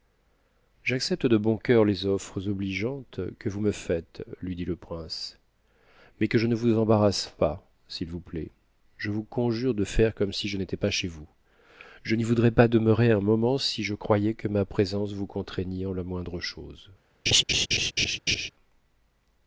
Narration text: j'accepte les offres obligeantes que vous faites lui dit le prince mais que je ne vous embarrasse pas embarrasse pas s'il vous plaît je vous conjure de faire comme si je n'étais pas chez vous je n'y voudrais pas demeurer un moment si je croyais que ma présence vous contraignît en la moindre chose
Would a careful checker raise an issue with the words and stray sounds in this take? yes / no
yes